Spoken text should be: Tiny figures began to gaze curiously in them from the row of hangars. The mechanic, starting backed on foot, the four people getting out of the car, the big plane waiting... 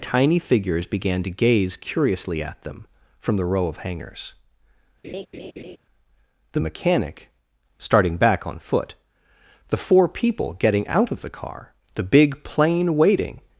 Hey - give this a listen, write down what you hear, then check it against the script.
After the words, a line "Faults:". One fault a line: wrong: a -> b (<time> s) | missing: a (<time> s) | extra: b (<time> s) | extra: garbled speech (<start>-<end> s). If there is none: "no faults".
Tiny figures began to gaze curiously at them from the row of hangars. The mechanic, starting back on foot, the four people getting out of the car, the big plane waiting...
Faults:
wrong: in -> at (2.4 s)
wrong: backed -> back (8.2 s)